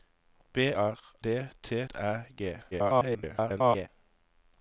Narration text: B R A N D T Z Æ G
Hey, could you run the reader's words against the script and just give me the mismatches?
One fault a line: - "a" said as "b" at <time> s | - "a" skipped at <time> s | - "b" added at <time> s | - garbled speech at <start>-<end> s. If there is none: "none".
- "A N" skipped at 1.0 s
- "Z" skipped at 1.9 s
- garbled speech at 2.7-3.9 s